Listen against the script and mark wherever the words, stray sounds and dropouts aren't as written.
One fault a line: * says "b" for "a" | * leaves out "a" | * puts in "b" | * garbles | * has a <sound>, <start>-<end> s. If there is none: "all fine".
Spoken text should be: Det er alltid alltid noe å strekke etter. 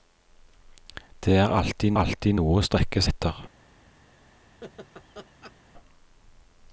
* has a laugh, 4.6-5.5 s